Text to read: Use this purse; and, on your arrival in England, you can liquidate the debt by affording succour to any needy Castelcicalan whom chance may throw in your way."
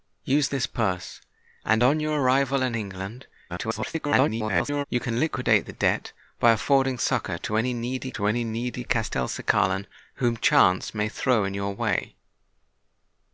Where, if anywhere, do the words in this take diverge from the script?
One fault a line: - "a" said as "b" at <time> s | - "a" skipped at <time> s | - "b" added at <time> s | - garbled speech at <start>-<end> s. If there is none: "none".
- garbled speech at 3.5-4.8 s
- "to any needy" added at 8.1 s